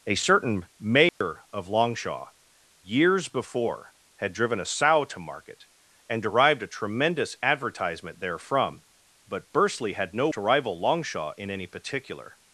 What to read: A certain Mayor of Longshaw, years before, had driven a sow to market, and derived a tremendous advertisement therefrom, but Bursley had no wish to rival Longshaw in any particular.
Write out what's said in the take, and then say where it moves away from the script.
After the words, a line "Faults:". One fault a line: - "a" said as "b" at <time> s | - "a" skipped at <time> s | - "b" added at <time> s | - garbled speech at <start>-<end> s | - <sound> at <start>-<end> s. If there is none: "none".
A certain Mayor of Longshaw, years before, had driven a sow to market, and derived a tremendous advertisement therefrom, but Bursley had no to rival Longshaw in any particular.
Faults:
- dropout at 1.1-1.2 s
- "wish" skipped at 10.3 s